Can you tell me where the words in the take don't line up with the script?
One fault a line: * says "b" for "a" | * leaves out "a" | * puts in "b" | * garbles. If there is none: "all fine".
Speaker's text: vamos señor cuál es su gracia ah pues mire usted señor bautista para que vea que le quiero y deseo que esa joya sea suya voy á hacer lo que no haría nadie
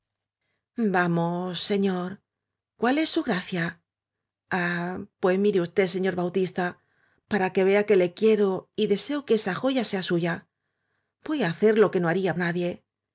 all fine